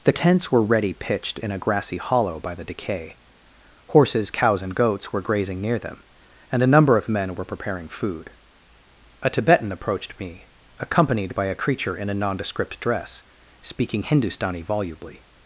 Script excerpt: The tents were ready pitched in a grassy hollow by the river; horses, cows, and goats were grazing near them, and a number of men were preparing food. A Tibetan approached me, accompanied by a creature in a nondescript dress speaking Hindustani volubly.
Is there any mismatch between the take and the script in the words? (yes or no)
yes